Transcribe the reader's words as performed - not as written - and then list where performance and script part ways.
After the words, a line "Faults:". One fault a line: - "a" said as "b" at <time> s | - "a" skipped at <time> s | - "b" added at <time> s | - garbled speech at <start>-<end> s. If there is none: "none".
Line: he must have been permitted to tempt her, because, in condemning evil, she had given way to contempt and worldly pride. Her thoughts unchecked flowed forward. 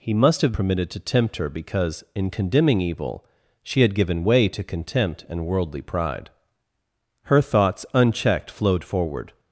he must have permitted to tempt her, because, in condemning evil, she had given way to contempt and worldly pride. Her thoughts unchecked flowed forward.
Faults:
- "been" skipped at 0.5 s